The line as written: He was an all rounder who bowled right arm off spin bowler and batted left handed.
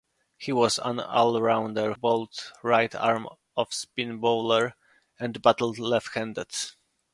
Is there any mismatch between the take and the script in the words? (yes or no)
yes